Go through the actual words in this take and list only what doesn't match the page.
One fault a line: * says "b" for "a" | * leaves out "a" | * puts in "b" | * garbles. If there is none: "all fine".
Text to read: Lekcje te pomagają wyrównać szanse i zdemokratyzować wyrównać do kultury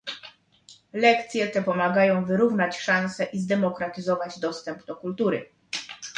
* says "dostęp" for "wyrównać"